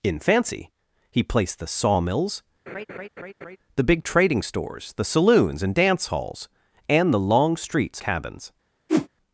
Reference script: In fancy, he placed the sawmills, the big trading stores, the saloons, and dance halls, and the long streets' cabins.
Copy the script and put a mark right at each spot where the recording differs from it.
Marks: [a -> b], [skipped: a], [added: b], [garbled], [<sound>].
In fancy, he placed the sawmills, [laugh] the big trading stores, the saloons, and dance halls, and the long streets' cabins. [whoosh]